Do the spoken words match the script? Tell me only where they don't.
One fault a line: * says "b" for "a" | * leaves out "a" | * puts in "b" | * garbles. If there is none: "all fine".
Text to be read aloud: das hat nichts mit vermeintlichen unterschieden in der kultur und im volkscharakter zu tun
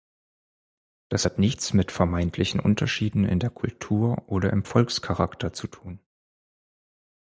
* says "oder" for "und"